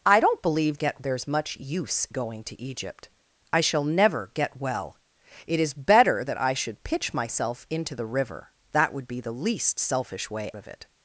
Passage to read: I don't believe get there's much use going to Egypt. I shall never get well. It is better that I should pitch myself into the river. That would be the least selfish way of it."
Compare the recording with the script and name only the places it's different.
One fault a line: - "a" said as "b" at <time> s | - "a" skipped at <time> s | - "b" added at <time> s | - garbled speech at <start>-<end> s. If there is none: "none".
none